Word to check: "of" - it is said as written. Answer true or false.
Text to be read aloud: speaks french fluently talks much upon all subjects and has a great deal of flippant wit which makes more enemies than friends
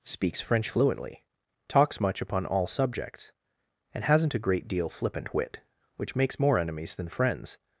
false